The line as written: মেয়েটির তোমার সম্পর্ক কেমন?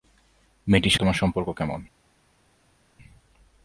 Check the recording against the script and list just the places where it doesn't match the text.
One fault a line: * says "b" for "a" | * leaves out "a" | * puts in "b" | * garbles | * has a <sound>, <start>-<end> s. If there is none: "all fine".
all fine